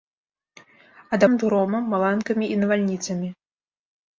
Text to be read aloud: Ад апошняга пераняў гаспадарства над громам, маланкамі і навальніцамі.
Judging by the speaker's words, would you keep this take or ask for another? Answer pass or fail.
fail